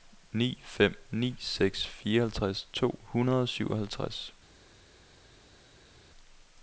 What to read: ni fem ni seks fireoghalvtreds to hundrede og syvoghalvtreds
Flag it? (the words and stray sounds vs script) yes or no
no